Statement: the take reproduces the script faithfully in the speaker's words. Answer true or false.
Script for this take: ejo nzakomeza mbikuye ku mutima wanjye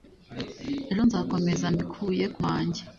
false